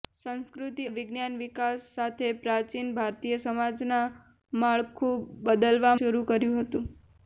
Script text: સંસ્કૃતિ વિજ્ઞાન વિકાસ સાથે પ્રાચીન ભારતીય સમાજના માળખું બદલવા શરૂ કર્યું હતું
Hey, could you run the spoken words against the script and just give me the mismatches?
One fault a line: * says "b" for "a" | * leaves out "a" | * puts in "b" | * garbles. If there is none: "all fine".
all fine